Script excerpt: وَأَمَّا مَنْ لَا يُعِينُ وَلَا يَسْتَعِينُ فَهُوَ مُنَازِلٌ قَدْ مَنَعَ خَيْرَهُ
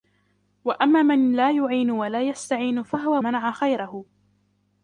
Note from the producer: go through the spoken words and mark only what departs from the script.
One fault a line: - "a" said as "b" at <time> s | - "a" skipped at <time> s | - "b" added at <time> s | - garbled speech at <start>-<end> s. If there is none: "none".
- "مُنَازِلٌ قَدْ" skipped at 3.2 s